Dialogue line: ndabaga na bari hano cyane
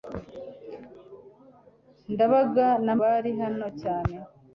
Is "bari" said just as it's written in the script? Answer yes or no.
yes